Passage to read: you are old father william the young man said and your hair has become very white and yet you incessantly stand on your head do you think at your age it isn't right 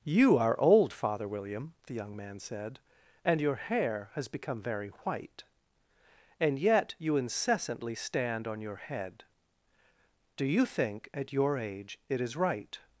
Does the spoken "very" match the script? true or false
true